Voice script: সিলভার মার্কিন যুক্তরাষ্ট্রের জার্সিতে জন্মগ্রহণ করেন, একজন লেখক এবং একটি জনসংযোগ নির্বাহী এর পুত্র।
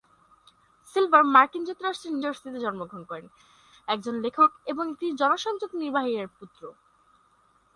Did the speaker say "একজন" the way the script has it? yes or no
yes